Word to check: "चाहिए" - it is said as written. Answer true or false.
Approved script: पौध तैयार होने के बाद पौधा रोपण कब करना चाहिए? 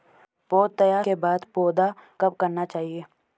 true